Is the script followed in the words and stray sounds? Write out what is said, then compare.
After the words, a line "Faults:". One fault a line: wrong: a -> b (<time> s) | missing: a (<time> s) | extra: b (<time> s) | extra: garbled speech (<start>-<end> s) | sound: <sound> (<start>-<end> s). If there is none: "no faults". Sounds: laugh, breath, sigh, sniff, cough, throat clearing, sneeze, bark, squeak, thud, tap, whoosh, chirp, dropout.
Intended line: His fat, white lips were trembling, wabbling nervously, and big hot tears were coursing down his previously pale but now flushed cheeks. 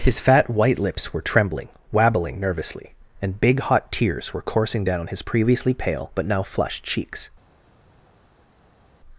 His fat, white lips were trembling, wabbling nervously, and big hot tears were coursing down his previously pale but now flushed cheeks.
Faults:
no faults